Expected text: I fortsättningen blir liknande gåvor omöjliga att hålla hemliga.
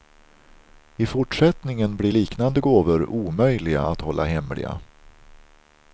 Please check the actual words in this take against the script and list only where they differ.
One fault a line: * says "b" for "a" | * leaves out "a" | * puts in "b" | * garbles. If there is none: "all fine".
all fine